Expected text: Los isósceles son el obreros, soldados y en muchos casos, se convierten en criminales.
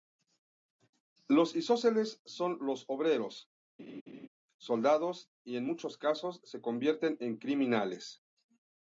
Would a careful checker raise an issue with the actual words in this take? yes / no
yes